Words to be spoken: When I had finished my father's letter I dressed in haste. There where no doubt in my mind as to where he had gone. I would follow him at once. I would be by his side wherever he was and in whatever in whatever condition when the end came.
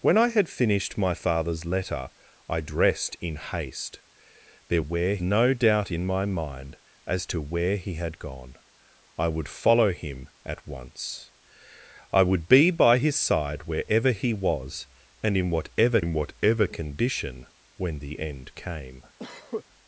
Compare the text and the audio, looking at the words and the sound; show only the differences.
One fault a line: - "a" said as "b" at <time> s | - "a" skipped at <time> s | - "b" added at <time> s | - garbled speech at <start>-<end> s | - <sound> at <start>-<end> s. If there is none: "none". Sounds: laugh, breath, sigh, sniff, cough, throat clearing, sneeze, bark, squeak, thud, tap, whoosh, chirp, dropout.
- cough at 19.2-19.6 s